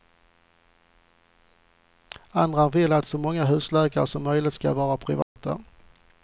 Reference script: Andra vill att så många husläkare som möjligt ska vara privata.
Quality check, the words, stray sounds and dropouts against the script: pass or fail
fail